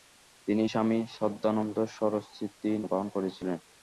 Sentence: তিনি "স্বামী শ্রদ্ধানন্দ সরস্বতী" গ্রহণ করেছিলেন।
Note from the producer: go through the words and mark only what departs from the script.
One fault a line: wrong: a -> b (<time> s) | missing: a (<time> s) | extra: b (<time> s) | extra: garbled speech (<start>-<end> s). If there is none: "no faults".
no faults